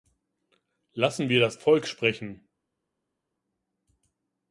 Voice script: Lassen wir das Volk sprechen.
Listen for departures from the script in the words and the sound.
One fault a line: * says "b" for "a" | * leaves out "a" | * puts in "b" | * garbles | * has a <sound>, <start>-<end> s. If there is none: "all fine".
all fine